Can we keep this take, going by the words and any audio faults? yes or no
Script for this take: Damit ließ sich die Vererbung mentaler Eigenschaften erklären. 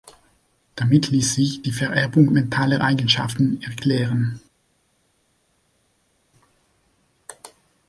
yes